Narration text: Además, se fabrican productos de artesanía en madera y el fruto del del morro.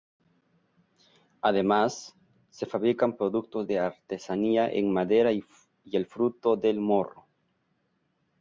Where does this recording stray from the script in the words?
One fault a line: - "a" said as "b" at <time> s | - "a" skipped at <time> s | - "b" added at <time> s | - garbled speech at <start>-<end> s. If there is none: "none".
- "del" skipped at 6.8 s